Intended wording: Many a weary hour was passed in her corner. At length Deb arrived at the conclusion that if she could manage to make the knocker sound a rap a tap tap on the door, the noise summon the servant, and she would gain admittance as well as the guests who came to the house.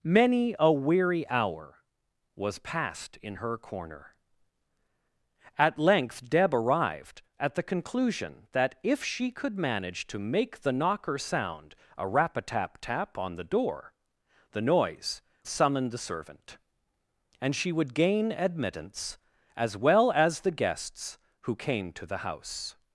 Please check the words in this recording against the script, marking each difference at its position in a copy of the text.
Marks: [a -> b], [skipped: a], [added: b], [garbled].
Many a weary hour was passed in her corner. At length Deb arrived at the conclusion that if she could manage to make the knocker sound a rap a tap tap on the door, the noise summon the servant, and she would gain admittance as well as the guests who came to the house.